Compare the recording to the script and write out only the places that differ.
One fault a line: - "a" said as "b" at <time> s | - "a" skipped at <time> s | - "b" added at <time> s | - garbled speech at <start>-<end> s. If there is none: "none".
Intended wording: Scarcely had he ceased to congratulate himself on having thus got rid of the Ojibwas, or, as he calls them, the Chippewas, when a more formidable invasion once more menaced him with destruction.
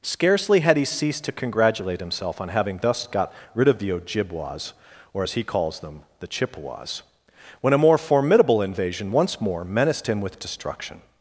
none